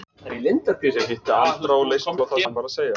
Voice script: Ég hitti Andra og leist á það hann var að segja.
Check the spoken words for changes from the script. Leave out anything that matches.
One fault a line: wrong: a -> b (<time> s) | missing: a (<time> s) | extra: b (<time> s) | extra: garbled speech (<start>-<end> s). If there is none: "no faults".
no faults